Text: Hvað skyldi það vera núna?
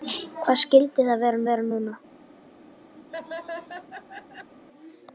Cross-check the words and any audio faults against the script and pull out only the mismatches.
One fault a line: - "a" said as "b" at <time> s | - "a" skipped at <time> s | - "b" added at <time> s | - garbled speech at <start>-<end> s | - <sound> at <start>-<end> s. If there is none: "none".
- "vera" added at 1.5 s
- laugh at 3.0-4.5 s